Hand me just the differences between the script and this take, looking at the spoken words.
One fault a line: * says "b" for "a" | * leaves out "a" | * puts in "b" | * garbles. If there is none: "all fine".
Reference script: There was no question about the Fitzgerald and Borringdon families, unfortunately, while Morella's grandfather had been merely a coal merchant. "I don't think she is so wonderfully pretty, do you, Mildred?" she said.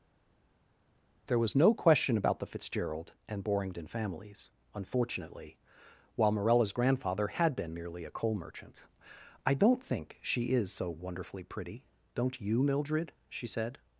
* says "don't" for "do"